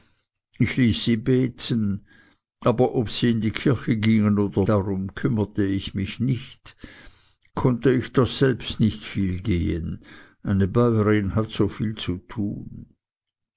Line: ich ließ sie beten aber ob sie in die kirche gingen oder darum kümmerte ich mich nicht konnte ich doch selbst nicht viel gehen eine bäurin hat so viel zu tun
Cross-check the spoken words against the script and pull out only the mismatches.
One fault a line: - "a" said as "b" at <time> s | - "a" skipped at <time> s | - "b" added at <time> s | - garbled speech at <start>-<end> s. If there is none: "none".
none